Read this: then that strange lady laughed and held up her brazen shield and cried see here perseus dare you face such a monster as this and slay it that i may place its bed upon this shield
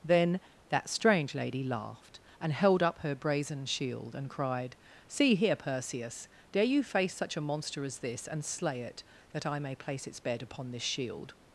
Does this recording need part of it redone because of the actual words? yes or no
no